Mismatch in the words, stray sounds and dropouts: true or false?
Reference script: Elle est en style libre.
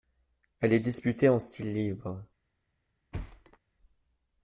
true